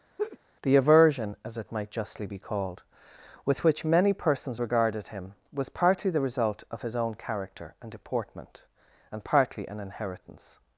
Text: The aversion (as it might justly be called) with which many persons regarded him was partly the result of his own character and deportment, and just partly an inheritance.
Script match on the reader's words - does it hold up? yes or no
no